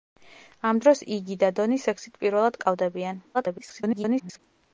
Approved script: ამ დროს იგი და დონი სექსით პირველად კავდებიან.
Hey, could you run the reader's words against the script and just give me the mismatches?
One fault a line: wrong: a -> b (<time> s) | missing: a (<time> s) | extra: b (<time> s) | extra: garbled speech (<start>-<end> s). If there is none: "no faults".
extra: garbled speech (3.3-4.4 s)